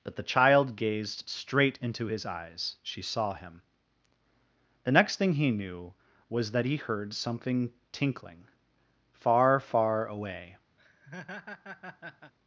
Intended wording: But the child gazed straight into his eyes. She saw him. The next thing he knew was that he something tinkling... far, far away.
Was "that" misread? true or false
false